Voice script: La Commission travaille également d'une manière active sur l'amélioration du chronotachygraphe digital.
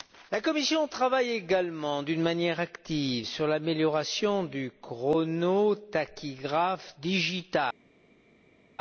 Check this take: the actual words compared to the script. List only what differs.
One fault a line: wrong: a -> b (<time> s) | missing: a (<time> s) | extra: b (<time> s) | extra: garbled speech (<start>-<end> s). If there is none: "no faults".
no faults